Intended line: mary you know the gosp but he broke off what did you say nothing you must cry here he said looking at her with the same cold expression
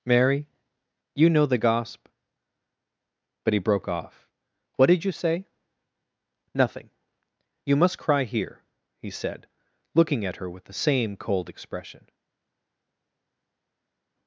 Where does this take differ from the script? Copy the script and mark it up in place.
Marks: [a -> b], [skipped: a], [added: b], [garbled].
mary you know the gosp but he broke off what did you say nothing you must cry here he said looking at her with the same cold expression